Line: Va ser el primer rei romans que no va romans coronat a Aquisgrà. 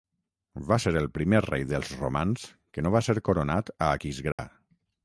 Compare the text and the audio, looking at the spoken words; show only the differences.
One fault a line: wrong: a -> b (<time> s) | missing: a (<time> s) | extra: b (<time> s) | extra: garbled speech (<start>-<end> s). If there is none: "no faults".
extra: dels (1.7 s)
wrong: romans -> ser (3.1 s)